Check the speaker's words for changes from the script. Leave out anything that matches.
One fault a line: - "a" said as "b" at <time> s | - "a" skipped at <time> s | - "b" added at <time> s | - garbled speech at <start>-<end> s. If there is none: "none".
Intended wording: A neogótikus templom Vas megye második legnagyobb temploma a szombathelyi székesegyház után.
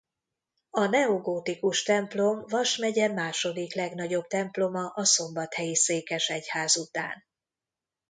none